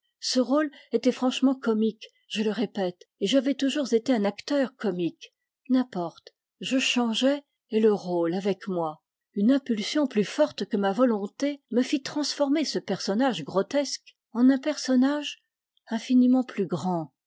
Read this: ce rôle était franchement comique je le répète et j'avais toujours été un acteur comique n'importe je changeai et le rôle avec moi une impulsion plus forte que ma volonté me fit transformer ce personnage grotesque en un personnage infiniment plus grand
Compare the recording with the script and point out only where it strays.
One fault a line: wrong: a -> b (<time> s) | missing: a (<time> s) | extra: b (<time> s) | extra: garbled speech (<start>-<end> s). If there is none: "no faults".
no faults